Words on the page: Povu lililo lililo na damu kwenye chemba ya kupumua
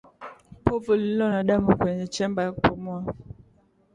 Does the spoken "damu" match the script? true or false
true